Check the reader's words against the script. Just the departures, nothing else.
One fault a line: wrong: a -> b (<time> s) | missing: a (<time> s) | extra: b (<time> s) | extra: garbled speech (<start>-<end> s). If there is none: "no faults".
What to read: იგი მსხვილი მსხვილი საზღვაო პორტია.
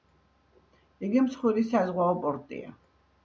missing: მსხვილი (1.6 s)